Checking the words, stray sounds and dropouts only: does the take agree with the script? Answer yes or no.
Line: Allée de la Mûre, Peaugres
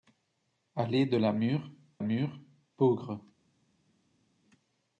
no